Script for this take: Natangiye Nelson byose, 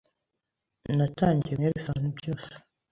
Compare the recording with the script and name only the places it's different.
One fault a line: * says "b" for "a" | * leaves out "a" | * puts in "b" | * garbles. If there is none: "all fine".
all fine